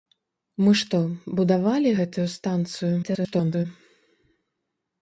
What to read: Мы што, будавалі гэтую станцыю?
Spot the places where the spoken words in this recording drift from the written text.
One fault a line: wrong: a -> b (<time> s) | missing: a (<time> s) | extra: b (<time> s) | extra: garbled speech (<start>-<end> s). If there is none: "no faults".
extra: garbled speech (3.0-3.7 s)